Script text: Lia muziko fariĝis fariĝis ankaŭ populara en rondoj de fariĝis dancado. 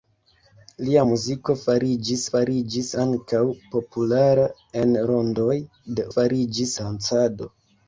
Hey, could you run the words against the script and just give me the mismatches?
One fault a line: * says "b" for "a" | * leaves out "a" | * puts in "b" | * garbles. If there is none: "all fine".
all fine